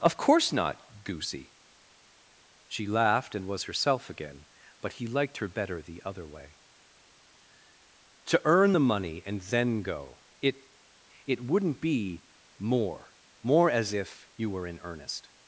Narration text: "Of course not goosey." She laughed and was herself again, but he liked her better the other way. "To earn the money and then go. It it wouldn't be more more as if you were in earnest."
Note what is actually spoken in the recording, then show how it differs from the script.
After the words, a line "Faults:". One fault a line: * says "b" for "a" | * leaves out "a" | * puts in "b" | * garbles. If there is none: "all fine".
"Of course not goosey." She laughed and was herself again, but he liked her better the other way. "To earn the money and then go. It it wouldn't be more more as if you were in earnest."
Faults:
all fine